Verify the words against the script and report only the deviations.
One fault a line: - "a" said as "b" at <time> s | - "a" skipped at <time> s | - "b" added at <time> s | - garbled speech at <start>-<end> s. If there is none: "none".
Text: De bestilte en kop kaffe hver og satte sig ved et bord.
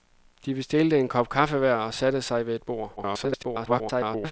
- garbled speech at 3.0-4.3 s